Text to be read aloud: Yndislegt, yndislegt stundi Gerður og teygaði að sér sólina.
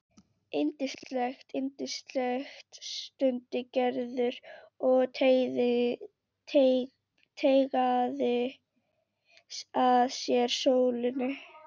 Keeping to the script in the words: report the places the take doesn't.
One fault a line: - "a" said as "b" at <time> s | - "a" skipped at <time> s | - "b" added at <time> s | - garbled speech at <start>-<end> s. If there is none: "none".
none